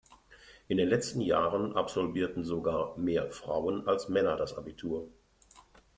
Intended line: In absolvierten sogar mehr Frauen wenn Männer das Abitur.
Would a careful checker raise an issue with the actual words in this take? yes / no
yes